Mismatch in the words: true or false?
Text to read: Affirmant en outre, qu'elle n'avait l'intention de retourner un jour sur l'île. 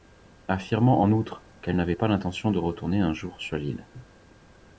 true